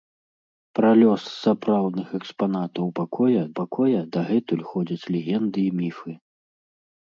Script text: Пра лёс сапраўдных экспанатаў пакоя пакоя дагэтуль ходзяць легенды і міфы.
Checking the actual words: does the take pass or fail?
pass